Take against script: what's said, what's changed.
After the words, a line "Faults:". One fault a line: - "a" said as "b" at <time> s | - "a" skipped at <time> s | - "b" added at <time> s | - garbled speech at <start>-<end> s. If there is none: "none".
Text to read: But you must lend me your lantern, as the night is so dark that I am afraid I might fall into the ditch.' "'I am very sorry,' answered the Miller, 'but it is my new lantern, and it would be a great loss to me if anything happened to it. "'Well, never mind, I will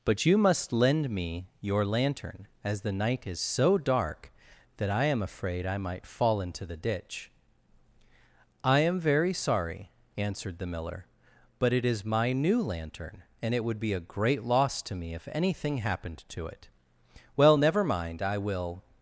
But you must lend me your lantern, as the night is so dark that I am afraid I might fall into the ditch.' "'I am very sorry,' answered the Miller, 'but it is my new lantern, and it would be a great loss to me if anything happened to it. "'Well, never mind, I will
Faults:
none